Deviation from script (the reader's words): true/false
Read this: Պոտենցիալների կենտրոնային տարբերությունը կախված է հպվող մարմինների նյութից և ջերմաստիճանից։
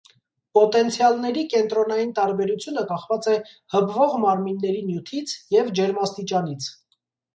false